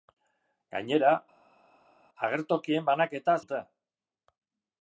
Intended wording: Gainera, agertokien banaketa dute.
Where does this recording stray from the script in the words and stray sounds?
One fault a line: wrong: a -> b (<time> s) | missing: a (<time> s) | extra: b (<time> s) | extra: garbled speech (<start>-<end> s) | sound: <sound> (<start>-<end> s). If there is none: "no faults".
no faults